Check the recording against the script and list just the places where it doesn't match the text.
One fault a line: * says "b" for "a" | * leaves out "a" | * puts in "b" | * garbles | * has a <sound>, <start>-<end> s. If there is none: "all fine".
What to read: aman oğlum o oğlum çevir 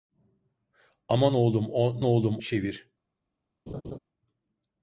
* has a laugh, 3.7-4.0 s